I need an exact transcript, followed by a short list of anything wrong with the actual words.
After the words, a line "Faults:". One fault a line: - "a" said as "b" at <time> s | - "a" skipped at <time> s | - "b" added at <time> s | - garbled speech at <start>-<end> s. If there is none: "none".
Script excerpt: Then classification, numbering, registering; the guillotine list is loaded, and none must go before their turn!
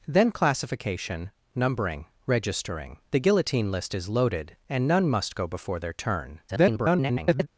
Then classification, numbering, registering; the guillotine list is loaded, and none must go before their turn! [garbled]
Faults:
- garbled speech at 6.5-7.5 s